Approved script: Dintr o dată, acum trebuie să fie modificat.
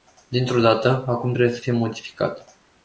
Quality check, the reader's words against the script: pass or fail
pass